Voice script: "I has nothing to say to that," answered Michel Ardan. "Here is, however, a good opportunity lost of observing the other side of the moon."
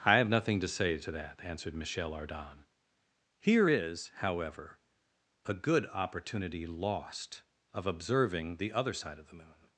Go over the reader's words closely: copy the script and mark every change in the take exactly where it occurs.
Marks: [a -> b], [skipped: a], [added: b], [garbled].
"I [has -> have] nothing to say to that," answered Michel Ardan. "Here is, however, a good opportunity lost of observing the other side of the moon."